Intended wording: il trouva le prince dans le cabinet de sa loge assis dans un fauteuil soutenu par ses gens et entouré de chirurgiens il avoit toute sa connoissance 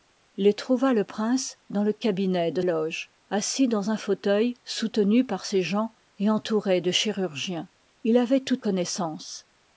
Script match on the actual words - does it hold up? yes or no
no